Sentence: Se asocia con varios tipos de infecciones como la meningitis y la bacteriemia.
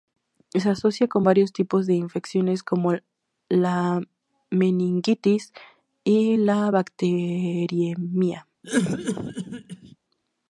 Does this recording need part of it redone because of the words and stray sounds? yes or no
yes